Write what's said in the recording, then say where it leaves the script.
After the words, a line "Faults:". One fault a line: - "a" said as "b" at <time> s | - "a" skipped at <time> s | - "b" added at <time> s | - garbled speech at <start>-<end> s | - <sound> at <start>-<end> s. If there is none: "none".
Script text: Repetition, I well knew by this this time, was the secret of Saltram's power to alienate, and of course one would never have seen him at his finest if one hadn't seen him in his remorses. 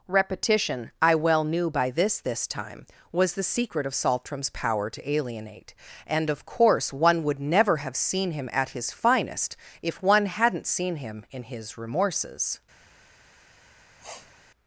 Repetition, I well knew by this this time, was the secret of Saltram's power to alienate, and of course one would never have seen him at his finest if one hadn't seen him in his remorses.
Faults:
- sniff at 14.0-14.4 s